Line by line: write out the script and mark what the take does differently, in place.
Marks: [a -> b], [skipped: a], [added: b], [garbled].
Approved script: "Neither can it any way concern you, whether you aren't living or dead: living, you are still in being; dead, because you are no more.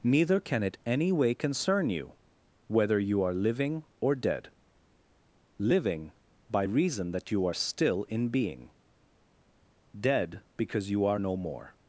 "Neither can it any way concern you, whether you [aren't -> are] living or dead: living, [added: by reason that] you are still in being; dead, because you are no more.